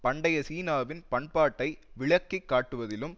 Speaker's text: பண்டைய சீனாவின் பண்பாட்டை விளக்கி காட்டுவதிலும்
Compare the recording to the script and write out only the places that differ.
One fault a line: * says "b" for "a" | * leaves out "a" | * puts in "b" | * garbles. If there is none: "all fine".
all fine